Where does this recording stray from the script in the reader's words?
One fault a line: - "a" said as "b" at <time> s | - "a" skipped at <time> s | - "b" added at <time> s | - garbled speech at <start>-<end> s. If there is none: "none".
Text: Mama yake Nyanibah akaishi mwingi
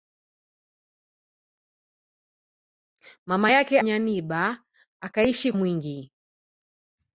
none